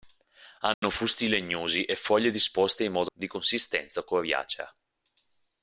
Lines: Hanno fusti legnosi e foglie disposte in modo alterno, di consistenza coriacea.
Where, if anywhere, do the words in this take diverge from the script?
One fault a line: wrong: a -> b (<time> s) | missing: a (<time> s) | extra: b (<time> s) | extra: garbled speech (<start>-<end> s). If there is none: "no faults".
missing: alterno (3.1 s)